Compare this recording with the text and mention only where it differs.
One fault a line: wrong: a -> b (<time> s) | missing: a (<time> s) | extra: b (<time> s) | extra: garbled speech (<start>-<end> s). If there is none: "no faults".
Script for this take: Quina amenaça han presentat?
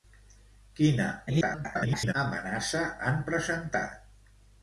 extra: garbled speech (1.3-2.1 s)